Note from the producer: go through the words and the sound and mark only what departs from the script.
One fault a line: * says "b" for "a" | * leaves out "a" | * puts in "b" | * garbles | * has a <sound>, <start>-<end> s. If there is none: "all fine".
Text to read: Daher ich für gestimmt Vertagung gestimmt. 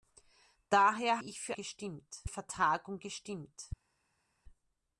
all fine